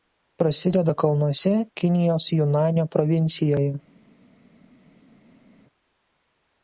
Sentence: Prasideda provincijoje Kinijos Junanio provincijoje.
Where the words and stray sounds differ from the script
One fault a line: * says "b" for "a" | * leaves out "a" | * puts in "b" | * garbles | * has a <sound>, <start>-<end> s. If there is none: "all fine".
* says "kalnuose" for "provincijoje"